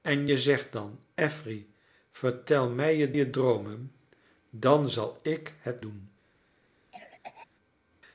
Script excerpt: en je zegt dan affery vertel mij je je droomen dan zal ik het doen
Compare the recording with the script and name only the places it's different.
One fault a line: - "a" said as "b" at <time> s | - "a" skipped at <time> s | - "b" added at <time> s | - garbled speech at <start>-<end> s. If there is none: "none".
none